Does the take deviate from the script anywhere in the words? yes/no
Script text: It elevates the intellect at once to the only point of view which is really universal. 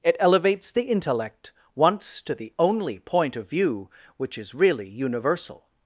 yes